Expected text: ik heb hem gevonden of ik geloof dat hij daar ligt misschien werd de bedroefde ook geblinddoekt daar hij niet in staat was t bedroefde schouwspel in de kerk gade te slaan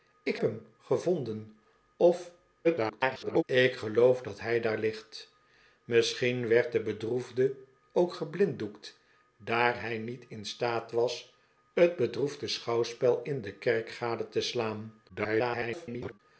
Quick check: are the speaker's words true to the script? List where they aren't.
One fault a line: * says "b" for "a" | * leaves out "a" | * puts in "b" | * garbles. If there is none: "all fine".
* leaves out "heb"
* garbles
* garbles